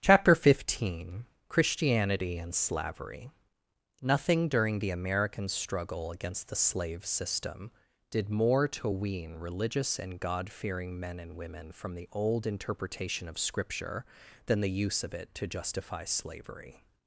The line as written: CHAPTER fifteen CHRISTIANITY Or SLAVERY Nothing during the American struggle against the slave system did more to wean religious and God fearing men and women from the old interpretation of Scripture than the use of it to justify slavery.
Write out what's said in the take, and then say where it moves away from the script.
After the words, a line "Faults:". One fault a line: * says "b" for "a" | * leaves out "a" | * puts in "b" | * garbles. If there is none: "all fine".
CHAPTER fifteen CHRISTIANITY AND SLAVERY Nothing during the American struggle against the slave system did more to wean religious and God fearing men and women from the old interpretation of Scripture than the use of it to justify slavery.
Faults:
* says "AND" for "Or"